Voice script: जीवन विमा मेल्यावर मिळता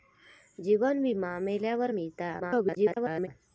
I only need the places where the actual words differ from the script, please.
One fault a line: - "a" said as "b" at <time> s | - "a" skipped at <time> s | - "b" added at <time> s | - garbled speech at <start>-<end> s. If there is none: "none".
- garbled speech at 2.4-3.3 s